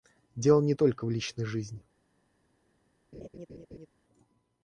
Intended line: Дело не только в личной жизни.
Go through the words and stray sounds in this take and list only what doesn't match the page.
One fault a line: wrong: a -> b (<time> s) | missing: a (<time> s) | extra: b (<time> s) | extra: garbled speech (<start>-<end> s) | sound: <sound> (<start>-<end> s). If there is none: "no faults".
sound: laugh (3.1-3.9 s)